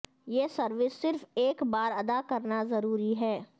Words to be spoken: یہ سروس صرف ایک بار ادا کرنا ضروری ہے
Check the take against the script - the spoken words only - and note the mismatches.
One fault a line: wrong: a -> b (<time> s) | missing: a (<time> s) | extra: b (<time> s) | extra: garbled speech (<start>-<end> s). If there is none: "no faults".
no faults